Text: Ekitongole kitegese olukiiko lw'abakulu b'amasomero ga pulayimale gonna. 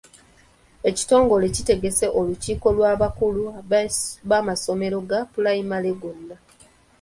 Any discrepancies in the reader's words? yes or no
no